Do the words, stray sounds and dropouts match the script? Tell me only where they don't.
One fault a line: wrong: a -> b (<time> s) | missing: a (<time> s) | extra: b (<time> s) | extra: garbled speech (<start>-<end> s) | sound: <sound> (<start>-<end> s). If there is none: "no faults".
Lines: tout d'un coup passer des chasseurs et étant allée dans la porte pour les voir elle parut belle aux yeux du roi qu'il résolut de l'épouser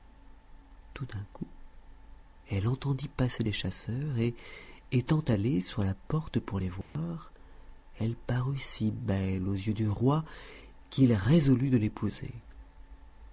extra: elle entendit (2.5 s)
wrong: dans -> sur (5.6 s)
sound: dropout (6.8-7.0 s)
extra: si (8.6 s)